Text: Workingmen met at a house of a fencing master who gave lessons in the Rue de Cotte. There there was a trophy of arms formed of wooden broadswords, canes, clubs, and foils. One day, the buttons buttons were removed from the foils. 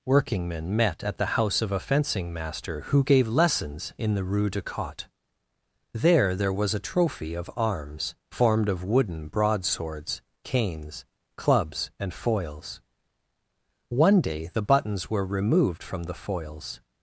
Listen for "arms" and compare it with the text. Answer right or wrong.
right